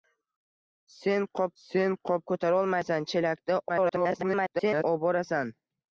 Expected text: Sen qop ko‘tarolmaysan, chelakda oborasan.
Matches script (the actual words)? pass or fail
fail